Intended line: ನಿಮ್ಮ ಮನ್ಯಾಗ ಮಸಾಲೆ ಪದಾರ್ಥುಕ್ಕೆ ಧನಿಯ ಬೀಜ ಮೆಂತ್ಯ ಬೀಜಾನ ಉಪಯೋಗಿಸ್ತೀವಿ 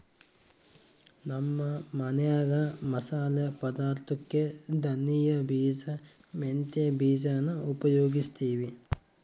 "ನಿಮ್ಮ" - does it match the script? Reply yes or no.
no